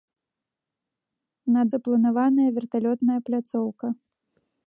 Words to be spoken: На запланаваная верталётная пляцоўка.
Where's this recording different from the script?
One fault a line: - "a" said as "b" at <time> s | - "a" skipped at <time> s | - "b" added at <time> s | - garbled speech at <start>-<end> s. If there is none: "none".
none